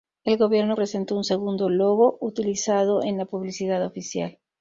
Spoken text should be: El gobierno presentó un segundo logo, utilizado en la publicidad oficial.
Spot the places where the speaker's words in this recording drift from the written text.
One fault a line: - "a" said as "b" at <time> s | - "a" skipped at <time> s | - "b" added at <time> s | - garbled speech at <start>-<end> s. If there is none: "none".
none